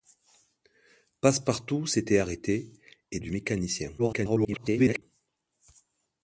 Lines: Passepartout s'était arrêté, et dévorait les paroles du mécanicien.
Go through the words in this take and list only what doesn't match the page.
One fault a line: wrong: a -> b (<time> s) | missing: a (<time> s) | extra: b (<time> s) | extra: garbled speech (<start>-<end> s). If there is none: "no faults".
missing: dévorait les paroles (3.2 s)
extra: garbled speech (4.0-5.0 s)